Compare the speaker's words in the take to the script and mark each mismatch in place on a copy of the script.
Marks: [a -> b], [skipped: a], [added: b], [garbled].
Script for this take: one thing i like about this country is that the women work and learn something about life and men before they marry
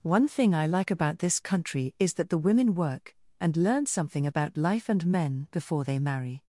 one thing i like about this country is that the women work and learn something about life and men before they marry